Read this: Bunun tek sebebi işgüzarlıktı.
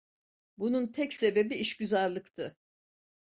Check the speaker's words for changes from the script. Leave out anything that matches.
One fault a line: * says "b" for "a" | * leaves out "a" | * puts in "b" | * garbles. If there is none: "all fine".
all fine